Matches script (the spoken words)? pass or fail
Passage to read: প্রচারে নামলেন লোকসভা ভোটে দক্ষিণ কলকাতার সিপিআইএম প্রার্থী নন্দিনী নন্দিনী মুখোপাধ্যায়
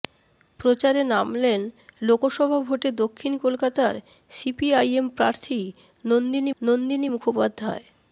pass